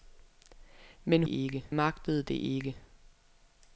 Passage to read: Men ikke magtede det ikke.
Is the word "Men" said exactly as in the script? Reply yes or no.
yes